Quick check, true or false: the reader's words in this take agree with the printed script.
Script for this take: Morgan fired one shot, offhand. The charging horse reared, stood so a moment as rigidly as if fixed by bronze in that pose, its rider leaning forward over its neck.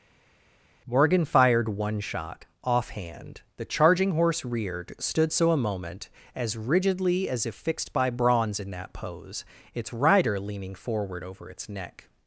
true